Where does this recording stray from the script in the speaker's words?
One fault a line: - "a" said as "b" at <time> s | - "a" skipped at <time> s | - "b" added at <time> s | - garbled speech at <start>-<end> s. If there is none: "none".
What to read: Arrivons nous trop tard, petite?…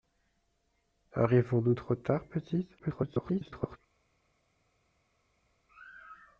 - garbled speech at 2.8-3.8 s